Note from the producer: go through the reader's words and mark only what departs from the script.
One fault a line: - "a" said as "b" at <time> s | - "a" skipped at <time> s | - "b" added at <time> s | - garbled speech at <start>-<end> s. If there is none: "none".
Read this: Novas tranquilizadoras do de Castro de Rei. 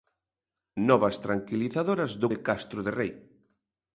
none